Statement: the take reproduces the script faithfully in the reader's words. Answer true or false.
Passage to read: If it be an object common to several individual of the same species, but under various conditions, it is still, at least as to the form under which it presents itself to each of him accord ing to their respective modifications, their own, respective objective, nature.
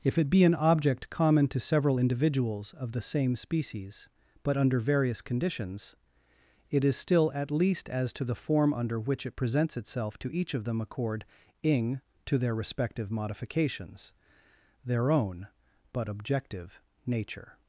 false